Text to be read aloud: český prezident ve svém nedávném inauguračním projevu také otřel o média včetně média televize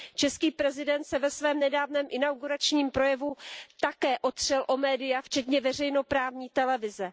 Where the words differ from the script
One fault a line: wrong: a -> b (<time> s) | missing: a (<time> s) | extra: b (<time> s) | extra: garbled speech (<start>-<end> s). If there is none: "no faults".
extra: se (1.0 s)
wrong: média -> veřejnoprávní (5.6 s)